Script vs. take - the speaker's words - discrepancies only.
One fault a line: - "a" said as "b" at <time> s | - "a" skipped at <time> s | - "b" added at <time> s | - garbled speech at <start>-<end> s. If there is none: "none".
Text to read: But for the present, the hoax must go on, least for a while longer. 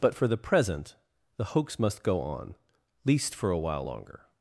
none